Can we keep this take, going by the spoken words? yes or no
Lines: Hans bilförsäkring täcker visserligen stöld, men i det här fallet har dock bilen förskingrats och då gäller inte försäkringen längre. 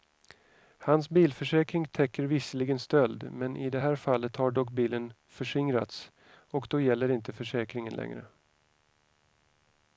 yes